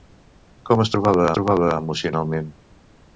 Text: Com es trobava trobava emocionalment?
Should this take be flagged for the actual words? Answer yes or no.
no